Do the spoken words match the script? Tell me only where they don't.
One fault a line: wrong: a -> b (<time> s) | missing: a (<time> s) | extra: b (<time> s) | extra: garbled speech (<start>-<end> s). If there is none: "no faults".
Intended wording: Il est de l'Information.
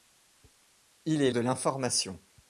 no faults